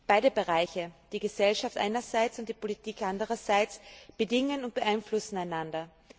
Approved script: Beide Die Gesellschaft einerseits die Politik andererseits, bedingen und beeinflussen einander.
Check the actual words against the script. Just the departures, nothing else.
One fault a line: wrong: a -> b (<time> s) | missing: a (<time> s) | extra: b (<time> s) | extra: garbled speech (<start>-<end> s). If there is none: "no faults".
extra: Bereiche (0.3 s)
extra: und (2.4 s)